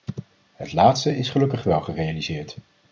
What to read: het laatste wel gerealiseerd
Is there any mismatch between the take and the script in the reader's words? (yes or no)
yes